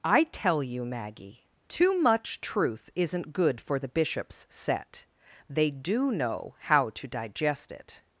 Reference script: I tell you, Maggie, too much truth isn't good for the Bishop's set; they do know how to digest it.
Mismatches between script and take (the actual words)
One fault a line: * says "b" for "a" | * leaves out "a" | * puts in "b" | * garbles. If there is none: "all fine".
all fine